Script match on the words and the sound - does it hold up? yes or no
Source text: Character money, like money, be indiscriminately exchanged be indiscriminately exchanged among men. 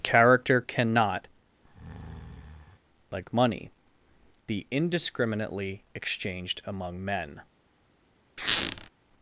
no